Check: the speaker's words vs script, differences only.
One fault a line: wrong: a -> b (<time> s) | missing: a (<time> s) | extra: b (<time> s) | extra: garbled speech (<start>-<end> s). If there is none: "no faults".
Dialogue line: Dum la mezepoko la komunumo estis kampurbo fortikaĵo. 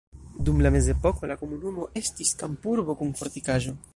extra: kun (3.0 s)